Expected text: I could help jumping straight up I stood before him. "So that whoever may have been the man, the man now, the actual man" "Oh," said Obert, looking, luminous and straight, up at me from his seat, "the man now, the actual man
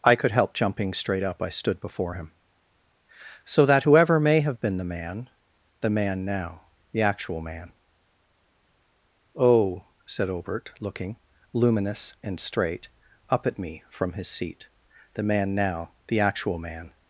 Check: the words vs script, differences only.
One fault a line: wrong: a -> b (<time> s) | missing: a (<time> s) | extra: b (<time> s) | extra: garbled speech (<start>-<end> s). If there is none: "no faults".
no faults